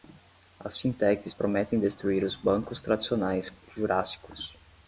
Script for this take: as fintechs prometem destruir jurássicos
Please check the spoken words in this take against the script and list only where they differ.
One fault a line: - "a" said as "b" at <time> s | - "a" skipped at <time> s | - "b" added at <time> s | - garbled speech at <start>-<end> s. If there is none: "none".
- "os bancos tradicionais" added at 2.2 s